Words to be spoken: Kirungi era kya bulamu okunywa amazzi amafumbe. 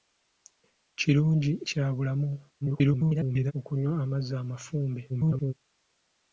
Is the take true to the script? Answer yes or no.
no